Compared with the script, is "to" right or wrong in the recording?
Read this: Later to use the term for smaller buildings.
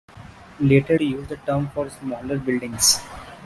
right